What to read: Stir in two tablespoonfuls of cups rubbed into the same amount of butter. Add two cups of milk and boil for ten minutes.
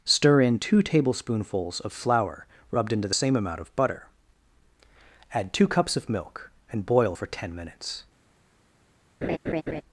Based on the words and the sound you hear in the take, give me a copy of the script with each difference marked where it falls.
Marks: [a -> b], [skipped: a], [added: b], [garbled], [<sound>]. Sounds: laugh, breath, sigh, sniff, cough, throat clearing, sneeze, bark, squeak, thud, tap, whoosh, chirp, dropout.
Stir in two tablespoonfuls of [cups -> flour] rubbed into the same amount of butter. Add two cups of milk and boil for ten minutes. [laugh]